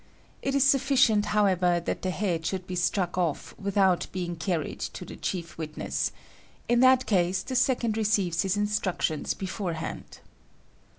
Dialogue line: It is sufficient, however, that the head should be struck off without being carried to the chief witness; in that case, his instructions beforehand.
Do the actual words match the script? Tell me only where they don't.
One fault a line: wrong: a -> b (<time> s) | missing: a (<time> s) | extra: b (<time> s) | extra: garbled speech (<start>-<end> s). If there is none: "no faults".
extra: the second receives (7.4 s)